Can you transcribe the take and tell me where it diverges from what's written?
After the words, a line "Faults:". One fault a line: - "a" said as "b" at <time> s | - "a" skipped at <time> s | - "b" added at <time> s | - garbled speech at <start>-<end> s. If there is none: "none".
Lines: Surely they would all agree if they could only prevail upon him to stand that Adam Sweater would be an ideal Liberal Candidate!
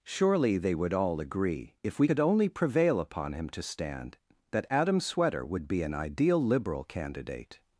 Surely they would all agree if we could only prevail upon him to stand that Adam Sweater would be an ideal Liberal Candidate!
Faults:
- "they" said as "we" at 2.0 s